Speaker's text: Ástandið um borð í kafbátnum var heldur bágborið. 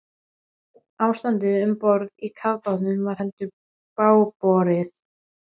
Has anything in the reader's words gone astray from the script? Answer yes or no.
no